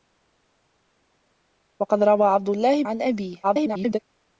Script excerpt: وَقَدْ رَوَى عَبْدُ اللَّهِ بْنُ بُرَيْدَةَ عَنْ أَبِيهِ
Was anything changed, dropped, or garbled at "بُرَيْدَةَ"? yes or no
yes